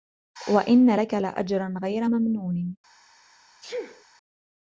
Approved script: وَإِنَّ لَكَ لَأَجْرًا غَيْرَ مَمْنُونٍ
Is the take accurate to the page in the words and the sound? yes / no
no